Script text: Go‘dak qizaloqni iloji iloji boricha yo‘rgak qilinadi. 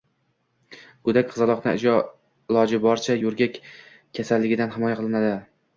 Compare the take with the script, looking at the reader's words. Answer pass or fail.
fail